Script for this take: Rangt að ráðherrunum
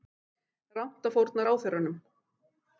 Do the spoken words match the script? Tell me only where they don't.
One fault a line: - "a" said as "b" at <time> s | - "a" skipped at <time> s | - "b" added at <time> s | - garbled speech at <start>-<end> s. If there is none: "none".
- "fórna" added at 1.2 s